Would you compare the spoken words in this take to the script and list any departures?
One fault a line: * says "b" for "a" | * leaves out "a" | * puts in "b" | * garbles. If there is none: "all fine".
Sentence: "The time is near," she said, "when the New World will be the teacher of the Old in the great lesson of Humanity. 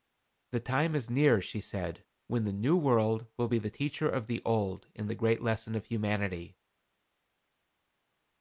all fine